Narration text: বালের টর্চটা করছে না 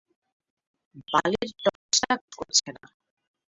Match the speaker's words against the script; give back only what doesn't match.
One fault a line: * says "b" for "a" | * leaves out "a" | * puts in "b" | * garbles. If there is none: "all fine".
all fine